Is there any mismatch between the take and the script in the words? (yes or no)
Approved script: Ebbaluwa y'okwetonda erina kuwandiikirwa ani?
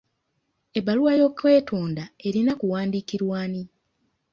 no